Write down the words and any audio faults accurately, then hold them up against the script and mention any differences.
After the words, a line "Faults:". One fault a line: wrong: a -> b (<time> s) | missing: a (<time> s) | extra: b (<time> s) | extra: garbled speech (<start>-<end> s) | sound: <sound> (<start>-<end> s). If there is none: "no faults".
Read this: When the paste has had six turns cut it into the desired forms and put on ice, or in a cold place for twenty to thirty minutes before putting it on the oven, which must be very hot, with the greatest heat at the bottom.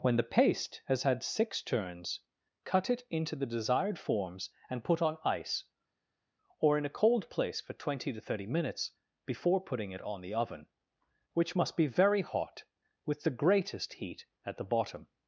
When the paste has had six turns cut it into the desired forms and put on ice, or in a cold place for twenty to thirty minutes before putting it on the oven, which must be very hot, with the greatest heat at the bottom.
Faults:
no faults